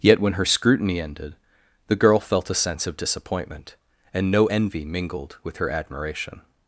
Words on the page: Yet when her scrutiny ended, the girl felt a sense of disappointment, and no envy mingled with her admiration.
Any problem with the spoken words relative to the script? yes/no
no